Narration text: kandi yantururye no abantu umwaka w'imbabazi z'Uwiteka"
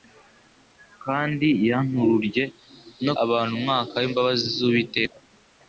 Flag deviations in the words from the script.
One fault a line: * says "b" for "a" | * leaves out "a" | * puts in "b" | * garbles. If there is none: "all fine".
all fine